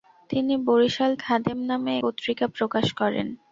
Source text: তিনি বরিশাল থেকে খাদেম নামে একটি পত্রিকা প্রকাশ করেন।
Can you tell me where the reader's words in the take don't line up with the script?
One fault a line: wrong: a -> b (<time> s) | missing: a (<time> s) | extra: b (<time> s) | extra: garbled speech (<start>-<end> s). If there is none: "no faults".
missing: থেকে (1.1 s)
missing: একটি (1.9 s)